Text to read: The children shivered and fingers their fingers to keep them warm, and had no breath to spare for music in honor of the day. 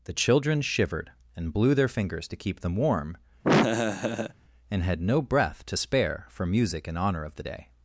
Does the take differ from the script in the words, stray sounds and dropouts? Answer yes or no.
yes